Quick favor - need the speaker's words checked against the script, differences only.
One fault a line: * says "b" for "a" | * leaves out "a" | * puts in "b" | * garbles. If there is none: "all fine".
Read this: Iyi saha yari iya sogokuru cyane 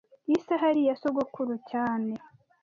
all fine